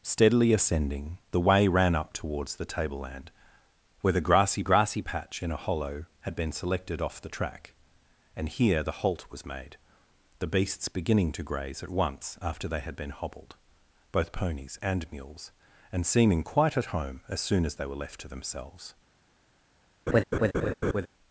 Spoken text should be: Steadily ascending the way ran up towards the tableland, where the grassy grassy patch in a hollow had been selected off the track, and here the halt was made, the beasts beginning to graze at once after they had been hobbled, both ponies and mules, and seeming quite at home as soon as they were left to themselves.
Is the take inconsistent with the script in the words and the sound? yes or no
yes